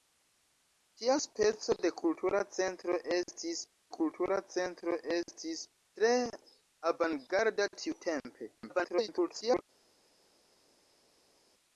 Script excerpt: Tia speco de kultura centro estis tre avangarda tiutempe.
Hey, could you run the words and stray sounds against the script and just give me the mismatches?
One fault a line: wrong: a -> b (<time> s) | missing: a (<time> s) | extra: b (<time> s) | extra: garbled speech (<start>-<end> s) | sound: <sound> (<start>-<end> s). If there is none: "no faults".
extra: kultura centro estis (3.9 s)
extra: garbled speech (8.6-9.6 s)